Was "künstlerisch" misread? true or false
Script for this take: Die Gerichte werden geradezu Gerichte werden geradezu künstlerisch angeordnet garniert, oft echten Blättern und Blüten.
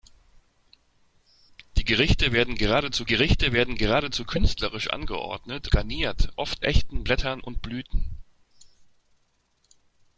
false